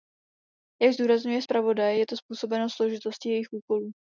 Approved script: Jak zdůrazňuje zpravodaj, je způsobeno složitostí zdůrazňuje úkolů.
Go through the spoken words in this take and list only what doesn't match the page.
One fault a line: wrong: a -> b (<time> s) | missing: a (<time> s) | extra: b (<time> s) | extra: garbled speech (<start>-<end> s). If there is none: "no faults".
extra: to (2.1 s)
wrong: zdůrazňuje -> jejich (3.3 s)